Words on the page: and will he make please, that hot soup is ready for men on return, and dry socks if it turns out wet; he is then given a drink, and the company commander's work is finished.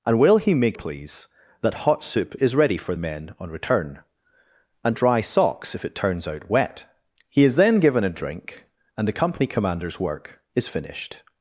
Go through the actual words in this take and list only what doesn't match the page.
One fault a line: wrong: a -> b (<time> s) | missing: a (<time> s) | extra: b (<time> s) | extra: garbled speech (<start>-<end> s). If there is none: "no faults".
no faults